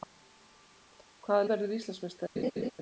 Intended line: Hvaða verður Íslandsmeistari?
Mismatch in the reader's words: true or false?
false